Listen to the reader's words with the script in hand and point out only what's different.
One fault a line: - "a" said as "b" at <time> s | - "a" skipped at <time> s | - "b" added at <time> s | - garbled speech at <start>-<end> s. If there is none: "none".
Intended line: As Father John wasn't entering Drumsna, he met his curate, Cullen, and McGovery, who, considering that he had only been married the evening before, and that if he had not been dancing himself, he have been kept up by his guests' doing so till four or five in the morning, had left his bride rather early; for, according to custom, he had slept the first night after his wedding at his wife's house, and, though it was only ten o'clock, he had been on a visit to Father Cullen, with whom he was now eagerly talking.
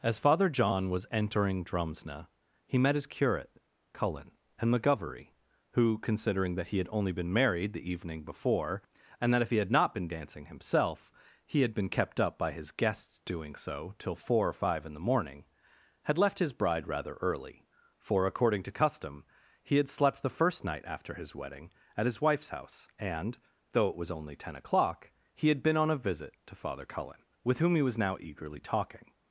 - "wasn't" said as "was" at 0.9 s
- "have" said as "had" at 11.6 s